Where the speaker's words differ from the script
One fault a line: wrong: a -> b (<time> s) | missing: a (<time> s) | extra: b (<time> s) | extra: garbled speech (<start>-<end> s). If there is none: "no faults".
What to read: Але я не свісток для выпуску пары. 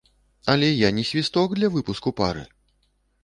no faults